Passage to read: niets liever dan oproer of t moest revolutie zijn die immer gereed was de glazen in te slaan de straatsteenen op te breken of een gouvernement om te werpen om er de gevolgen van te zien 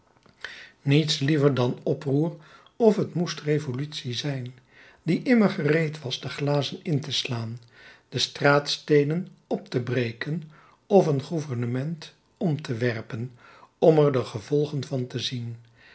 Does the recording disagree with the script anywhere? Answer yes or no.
no